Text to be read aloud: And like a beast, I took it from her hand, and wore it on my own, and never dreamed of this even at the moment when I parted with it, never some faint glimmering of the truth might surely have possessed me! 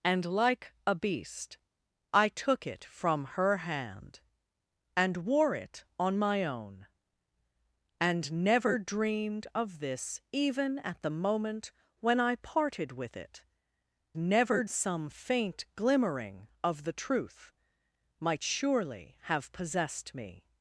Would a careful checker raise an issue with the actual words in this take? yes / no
no